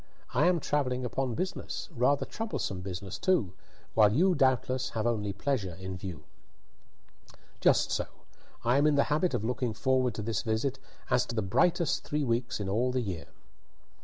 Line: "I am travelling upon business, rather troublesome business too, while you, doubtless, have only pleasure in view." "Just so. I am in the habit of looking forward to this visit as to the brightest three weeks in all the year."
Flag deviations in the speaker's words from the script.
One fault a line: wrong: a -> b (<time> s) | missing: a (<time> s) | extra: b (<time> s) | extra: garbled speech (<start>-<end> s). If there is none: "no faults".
no faults